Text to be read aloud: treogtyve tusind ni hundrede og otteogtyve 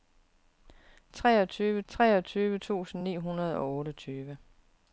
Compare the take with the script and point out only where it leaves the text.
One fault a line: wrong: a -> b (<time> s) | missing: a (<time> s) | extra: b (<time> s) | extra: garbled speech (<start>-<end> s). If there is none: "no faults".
extra: treogtyve (1.9 s)